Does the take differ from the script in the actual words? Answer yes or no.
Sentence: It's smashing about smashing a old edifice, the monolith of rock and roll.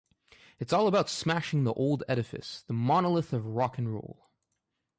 yes